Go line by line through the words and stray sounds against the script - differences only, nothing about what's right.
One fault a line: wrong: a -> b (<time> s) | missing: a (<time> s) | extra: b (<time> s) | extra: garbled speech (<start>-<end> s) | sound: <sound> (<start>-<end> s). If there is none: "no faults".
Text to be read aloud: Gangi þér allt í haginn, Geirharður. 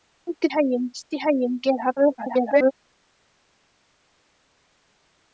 wrong: þér -> haginn (0.5 s)
extra: garbled speech (2.2-2.7 s)